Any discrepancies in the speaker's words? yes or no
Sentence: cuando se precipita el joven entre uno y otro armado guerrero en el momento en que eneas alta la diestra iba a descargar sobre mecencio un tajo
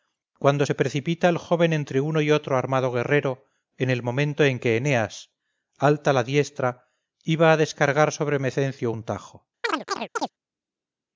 no